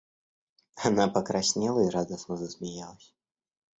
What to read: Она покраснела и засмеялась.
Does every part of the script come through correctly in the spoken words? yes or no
no